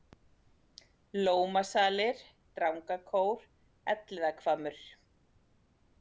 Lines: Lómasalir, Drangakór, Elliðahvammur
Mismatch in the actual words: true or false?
false